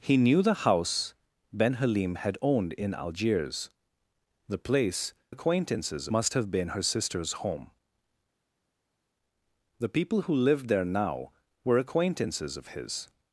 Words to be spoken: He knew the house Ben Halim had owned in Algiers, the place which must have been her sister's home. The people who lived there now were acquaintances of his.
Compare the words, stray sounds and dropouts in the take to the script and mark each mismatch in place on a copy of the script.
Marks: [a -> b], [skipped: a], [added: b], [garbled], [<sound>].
He knew the house Ben Halim had owned in Algiers, the place [which -> acquaintances] must have been her sister's home. The people who lived there now were acquaintances of his.